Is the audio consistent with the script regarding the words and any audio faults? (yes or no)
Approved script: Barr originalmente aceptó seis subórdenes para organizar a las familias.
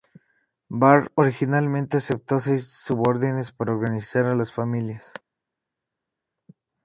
yes